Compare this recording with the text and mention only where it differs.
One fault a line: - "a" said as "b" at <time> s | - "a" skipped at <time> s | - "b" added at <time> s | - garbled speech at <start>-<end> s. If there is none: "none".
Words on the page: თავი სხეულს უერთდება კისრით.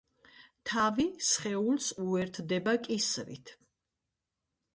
none